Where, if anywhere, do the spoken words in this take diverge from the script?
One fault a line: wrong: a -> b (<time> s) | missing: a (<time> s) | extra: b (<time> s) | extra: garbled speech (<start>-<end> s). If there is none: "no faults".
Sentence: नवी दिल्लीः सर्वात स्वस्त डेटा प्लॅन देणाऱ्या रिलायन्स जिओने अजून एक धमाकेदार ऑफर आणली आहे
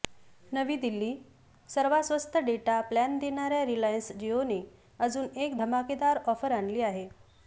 no faults